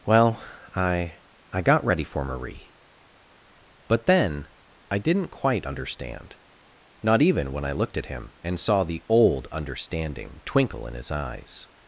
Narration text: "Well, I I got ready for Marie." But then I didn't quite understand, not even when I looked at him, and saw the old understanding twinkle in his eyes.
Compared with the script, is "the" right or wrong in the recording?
right